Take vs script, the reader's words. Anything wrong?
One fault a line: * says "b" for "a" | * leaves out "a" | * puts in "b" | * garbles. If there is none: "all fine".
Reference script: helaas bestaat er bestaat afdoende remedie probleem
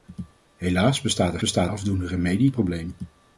all fine